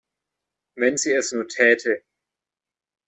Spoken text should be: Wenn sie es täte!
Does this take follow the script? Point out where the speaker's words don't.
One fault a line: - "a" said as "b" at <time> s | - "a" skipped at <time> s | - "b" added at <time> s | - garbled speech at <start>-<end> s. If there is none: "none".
- "nur" added at 1.3 s